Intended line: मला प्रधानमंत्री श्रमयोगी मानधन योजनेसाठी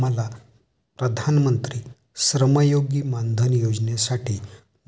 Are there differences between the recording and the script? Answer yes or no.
no